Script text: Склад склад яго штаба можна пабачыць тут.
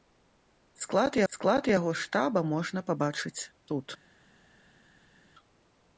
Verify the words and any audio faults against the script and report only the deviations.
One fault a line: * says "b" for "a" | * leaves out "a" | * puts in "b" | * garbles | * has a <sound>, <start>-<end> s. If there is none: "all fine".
all fine